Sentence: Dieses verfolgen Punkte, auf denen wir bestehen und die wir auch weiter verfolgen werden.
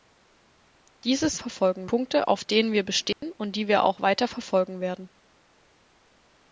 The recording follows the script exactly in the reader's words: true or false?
true